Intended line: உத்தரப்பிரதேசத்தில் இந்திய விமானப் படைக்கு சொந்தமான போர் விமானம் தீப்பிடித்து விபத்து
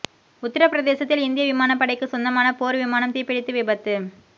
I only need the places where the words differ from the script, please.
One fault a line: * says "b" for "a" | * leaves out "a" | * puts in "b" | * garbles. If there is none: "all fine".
all fine